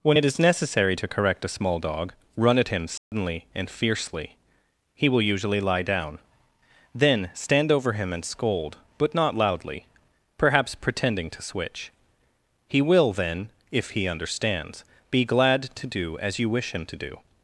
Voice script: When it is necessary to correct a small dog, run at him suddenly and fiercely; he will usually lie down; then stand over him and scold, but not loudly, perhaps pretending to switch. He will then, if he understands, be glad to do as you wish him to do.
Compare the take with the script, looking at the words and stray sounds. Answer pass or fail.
fail